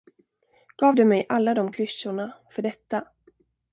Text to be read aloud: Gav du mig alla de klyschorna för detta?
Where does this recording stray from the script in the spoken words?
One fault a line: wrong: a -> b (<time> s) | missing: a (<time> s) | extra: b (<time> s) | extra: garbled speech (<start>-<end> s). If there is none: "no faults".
no faults